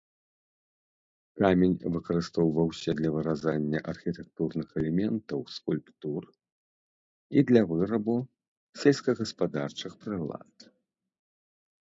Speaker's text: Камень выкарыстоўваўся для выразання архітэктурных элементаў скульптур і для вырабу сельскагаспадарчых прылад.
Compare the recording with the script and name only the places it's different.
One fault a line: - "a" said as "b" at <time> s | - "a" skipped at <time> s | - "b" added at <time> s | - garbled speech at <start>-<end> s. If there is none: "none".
none